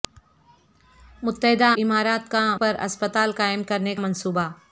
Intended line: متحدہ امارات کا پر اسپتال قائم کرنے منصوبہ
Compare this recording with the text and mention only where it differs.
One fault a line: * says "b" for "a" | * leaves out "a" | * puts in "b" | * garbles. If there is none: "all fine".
all fine